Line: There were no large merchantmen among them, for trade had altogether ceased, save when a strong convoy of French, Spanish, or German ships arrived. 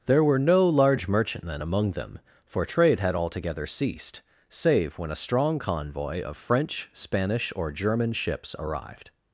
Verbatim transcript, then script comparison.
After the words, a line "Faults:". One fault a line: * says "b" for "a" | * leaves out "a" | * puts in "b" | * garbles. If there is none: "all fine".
There were no large merchantmen among them, for trade had altogether ceased, save when a strong convoy of French, Spanish, or German ships arrived.
Faults:
all fine